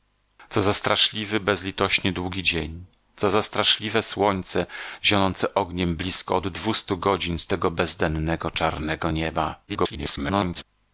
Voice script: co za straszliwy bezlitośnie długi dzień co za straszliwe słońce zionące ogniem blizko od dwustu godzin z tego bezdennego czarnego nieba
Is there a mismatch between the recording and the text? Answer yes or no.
yes